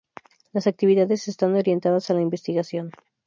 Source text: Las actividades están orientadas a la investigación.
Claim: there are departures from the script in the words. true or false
false